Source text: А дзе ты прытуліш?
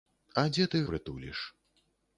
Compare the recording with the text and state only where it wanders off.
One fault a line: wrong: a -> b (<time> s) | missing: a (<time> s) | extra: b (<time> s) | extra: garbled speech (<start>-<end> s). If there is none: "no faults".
no faults